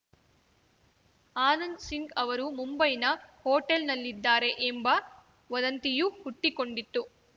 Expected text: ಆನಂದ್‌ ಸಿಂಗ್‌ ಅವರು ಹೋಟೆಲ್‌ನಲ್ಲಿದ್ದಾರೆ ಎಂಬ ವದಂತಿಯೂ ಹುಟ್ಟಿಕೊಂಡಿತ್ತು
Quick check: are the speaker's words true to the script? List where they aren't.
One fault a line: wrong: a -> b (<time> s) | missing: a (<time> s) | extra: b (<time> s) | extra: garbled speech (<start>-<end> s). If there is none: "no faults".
extra: ಮುಂಬೈನ (2.5 s)